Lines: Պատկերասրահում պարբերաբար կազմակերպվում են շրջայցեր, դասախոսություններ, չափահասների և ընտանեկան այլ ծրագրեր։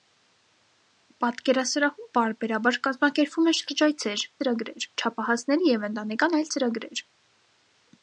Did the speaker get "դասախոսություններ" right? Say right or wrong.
wrong